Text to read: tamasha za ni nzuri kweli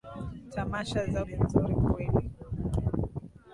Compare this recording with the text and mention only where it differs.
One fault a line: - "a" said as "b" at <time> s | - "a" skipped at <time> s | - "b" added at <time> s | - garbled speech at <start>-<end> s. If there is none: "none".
none